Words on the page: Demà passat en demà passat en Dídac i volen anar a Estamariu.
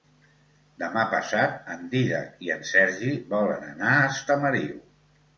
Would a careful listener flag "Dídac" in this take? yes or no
yes